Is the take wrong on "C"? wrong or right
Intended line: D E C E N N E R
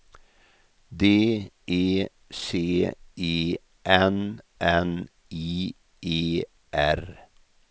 right